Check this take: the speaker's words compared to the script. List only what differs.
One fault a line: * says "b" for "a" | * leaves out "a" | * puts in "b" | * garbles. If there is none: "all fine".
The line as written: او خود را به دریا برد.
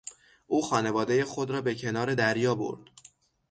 * puts in "خانوادهی"
* puts in "کنار"